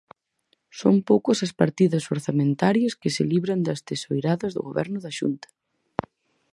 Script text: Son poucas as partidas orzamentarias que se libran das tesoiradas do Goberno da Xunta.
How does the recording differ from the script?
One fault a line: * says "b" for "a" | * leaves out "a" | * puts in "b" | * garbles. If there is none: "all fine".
all fine